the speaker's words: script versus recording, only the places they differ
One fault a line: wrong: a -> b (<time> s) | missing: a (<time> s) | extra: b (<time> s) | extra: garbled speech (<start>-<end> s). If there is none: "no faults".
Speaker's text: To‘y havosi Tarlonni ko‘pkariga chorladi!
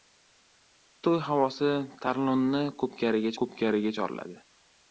extra: ko‘pkariga (3.4 s)